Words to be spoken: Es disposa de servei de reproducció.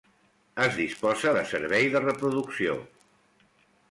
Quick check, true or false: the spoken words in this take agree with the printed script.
true